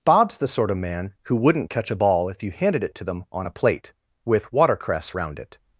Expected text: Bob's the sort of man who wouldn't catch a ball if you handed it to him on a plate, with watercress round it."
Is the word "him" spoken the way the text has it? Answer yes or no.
no